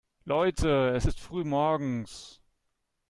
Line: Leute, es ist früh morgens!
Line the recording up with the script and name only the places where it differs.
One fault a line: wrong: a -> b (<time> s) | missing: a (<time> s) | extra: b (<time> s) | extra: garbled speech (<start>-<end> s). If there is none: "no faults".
no faults